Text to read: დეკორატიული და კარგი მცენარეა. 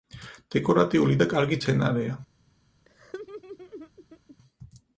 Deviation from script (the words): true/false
false